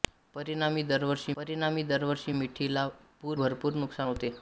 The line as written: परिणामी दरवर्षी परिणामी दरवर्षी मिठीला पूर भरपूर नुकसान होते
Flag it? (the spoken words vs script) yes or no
no